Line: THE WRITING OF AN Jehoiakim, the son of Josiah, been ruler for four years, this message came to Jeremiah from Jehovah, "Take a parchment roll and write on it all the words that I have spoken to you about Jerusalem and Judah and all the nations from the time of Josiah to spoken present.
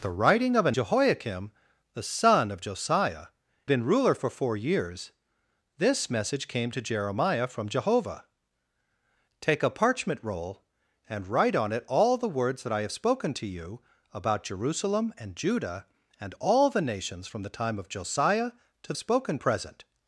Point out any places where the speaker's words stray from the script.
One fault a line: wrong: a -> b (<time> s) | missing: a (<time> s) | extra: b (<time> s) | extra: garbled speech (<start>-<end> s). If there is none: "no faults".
no faults